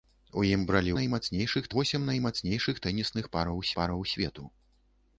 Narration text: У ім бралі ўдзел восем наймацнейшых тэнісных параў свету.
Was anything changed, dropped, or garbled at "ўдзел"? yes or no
yes